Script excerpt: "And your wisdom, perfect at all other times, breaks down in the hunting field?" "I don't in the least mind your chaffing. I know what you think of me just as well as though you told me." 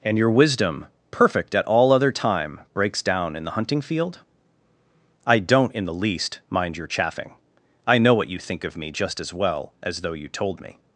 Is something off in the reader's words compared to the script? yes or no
yes